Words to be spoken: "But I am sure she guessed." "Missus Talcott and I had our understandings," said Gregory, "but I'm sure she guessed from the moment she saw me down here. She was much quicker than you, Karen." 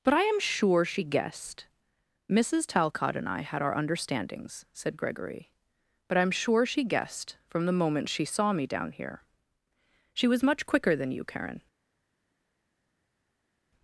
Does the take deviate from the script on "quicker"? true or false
false